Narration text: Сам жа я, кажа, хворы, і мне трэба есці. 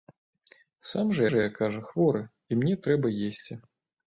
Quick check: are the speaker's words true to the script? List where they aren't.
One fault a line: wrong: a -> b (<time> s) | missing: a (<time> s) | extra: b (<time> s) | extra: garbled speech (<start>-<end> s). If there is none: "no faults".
extra: жа (1.3 s)